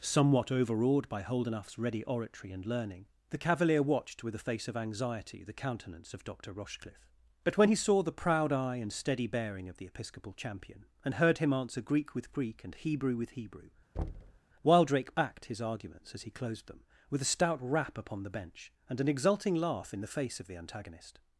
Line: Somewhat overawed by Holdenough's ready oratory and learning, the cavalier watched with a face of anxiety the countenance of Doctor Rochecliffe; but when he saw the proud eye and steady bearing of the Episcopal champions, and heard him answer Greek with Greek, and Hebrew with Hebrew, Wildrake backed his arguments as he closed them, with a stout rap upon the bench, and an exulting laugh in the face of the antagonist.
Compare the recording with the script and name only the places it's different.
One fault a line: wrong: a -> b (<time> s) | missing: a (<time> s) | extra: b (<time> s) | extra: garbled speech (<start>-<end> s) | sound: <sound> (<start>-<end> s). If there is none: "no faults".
wrong: champions -> champion (10.3 s)
sound: thud (14.0-14.4 s)